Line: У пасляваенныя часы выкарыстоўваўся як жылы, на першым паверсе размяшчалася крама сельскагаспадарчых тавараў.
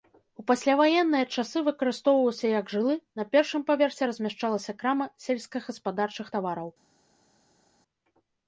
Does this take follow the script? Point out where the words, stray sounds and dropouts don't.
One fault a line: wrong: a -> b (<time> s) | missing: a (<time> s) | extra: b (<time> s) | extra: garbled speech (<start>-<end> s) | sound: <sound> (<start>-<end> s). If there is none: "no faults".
no faults